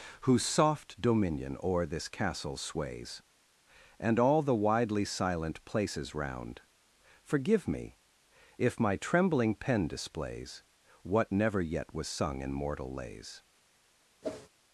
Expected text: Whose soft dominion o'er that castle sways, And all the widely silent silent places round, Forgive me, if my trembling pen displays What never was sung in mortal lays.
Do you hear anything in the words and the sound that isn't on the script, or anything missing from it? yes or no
yes